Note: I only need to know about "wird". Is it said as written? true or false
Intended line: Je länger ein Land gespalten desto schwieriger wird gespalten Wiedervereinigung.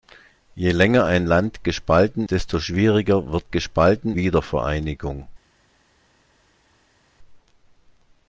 true